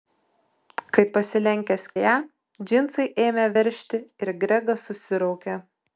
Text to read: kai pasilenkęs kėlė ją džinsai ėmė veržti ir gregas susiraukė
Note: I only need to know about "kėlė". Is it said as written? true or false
false